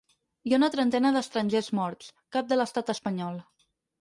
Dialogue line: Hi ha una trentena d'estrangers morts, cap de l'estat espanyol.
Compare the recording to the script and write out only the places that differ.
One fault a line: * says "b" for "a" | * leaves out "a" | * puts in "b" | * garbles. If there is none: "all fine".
all fine